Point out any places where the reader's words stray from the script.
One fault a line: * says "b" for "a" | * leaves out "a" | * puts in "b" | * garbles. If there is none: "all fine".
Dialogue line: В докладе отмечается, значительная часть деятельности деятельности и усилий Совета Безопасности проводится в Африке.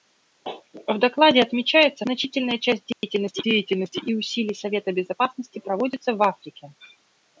all fine